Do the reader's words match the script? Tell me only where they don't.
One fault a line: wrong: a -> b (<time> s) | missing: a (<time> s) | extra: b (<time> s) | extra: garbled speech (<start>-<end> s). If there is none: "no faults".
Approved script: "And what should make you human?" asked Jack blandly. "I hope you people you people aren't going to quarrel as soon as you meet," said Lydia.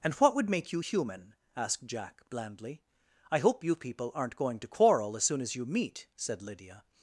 wrong: should -> would (0.3 s)
missing: you people (4.1 s)